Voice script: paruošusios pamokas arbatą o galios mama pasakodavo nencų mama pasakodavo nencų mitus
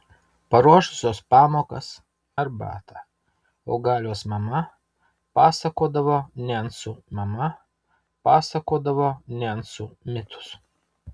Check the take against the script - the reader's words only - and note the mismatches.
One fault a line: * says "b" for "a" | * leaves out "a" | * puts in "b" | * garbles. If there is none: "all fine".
all fine